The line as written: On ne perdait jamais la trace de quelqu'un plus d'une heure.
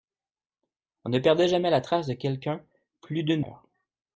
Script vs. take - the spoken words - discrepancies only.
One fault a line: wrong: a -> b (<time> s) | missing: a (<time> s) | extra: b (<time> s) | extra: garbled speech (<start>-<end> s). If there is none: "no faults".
no faults